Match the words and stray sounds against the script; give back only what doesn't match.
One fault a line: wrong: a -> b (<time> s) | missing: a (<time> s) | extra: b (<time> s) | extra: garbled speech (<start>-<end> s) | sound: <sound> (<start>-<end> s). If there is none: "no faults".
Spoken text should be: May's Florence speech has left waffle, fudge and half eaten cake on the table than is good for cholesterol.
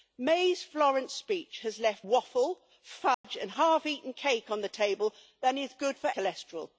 sound: dropout (3.1-3.2 s)